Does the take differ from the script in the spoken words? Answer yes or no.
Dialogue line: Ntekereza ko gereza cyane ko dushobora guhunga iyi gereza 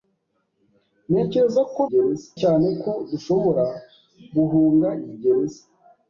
no